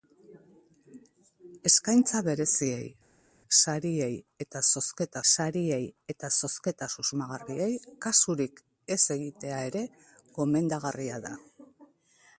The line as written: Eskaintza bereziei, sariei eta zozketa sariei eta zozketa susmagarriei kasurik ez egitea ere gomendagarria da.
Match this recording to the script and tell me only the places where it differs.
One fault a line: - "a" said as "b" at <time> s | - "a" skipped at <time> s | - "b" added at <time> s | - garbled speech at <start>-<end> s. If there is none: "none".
none